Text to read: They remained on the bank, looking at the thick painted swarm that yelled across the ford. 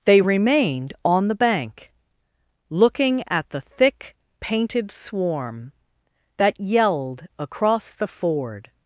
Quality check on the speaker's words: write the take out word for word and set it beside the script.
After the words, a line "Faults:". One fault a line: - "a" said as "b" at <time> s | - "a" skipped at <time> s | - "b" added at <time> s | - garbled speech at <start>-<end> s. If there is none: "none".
They remained on the bank, looking at the thick painted swarm that yelled across the ford.
Faults:
none